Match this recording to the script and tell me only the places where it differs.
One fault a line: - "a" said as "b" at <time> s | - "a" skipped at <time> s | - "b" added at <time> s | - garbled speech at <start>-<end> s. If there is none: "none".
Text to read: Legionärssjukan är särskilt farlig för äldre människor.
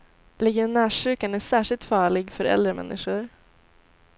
none